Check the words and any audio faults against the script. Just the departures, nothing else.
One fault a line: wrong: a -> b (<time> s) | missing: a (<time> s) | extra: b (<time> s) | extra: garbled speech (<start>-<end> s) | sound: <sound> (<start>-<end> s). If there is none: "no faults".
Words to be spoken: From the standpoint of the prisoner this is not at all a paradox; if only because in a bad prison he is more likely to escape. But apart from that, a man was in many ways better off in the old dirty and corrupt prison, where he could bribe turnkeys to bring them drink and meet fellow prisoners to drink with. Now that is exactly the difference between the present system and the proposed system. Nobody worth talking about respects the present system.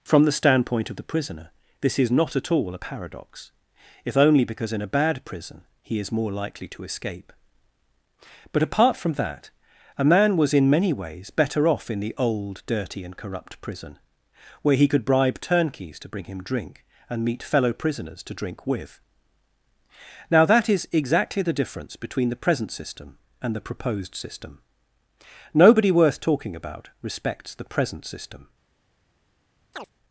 wrong: them -> him (16.3 s)
sound: chirp (29.7-29.9 s)